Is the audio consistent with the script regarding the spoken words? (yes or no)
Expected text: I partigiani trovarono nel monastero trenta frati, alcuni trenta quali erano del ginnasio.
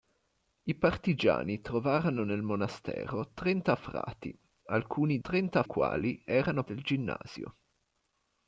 yes